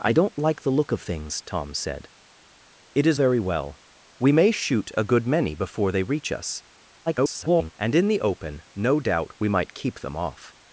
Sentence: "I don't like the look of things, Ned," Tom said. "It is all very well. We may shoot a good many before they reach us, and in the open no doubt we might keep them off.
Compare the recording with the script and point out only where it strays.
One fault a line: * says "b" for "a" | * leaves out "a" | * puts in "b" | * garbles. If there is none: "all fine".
* leaves out "Ned"
* leaves out "all"
* garbles